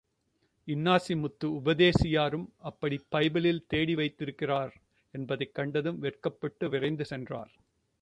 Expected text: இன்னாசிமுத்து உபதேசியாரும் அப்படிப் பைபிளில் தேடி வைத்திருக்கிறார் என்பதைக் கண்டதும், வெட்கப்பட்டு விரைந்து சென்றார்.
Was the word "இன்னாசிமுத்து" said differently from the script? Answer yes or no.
no